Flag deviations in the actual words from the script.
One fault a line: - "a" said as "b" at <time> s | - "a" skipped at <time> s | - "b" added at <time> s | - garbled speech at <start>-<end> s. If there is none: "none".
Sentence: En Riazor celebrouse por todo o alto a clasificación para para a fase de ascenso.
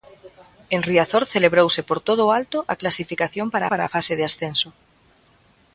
none